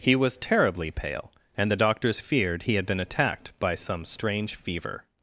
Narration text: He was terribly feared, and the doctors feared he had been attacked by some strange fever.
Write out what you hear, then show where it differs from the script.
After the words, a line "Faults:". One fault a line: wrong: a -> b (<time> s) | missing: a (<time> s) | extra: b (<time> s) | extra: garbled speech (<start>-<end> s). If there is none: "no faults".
He was terribly pale, and the doctors feared he had been attacked by some strange fever.
Faults:
wrong: feared -> pale (0.9 s)